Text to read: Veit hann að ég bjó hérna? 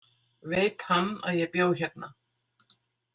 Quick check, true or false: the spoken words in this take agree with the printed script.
true